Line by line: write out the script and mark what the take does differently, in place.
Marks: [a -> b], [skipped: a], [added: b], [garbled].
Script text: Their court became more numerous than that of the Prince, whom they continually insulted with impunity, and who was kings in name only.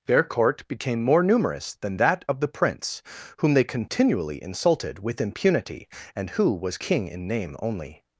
Their court became more numerous than that of the Prince, whom they continually insulted with impunity, and who was [kings -> king] in name only.